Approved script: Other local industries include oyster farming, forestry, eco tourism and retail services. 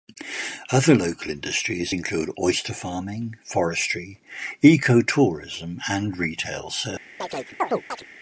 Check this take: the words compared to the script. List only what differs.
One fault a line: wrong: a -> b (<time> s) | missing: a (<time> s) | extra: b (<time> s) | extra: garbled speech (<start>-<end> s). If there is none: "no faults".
no faults